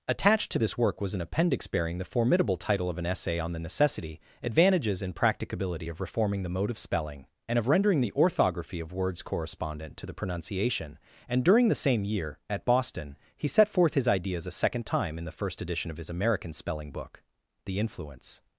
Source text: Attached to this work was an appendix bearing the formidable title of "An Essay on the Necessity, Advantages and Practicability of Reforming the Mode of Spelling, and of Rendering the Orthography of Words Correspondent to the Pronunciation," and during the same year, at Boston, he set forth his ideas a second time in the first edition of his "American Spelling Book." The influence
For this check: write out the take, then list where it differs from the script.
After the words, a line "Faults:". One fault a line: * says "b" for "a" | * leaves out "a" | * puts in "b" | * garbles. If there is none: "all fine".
Attached to this work was an appendix bearing the formidable title of "An Essay on the Necessity, Advantages and Practicability of Reforming the Mode of Spelling, and of Rendering the Orthography of Words Correspondent to the Pronunciation," and during the same year, at Boston, he set forth his ideas a second time in the first edition of his "American Spelling Book." The influence
Faults:
all fine